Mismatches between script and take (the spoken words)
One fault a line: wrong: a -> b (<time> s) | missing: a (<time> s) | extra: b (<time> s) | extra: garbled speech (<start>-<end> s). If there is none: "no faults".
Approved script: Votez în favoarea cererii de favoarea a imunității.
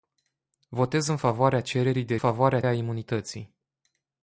no faults